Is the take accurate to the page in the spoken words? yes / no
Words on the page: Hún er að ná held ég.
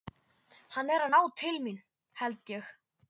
no